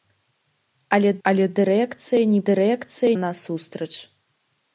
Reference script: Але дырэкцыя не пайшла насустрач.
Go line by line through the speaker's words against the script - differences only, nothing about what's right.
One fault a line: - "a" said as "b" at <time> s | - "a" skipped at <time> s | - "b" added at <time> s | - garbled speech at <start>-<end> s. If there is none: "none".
- "але" added at 1.3 s
- "пайшла" said as "дырэкцыя" at 2.5 s